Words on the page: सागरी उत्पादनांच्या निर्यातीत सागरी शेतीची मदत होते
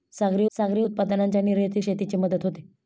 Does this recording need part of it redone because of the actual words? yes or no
yes